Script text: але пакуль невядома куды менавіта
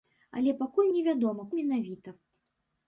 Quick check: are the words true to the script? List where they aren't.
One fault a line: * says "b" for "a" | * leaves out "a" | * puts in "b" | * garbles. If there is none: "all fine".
* leaves out "куды"